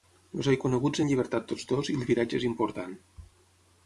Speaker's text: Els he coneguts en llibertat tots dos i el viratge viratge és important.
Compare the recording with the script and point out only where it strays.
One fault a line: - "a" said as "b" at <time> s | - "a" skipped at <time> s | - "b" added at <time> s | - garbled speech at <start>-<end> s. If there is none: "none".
- "viratge" skipped at 2.4 s